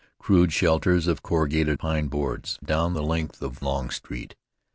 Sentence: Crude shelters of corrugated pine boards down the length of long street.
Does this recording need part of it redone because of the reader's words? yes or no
no